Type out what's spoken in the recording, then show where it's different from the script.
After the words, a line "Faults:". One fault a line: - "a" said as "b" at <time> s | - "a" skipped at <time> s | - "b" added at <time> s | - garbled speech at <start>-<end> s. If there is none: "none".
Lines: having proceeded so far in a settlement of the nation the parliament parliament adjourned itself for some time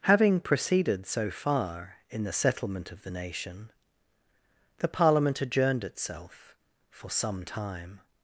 having proceeded so far in the settlement of the nation the parliament adjourned itself for some time
Faults:
- "a" said as "the" at 2.2 s
- "parliament" skipped at 5.4 s